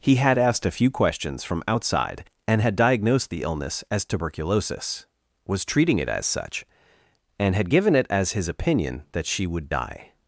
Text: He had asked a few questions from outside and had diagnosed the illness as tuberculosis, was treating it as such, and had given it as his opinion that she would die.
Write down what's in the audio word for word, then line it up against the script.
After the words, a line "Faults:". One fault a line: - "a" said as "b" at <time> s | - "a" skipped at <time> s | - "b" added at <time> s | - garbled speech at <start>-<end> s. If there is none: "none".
He had asked a few questions from outside and had diagnosed the illness as tuberculosis, was treating it as such, and had given it as his opinion that she would die.
Faults:
none